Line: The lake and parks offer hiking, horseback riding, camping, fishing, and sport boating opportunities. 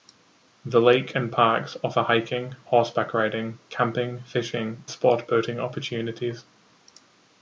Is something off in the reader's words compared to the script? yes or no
yes